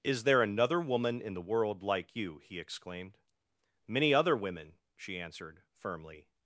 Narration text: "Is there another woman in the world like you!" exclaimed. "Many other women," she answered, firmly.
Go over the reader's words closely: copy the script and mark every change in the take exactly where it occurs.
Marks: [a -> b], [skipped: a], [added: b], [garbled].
"Is there another woman in the world like you!" [added: he] exclaimed. "Many other women," she answered, firmly.